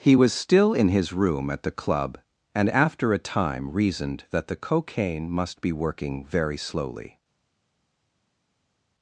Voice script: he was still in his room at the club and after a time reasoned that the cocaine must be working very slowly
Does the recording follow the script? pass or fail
pass